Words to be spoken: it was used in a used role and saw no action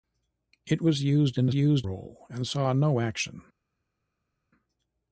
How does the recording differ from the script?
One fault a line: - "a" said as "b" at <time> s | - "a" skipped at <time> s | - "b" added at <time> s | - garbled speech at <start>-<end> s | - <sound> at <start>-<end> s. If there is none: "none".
none